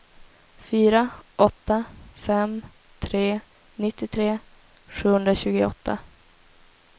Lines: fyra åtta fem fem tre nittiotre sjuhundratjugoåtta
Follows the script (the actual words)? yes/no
no